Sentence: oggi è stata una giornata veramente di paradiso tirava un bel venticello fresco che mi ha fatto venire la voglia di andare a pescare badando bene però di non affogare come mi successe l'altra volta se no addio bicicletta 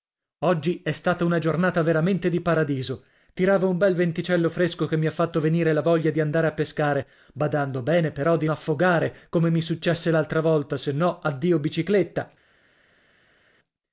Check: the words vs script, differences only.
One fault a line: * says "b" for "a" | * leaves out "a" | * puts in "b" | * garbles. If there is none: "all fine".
* leaves out "non"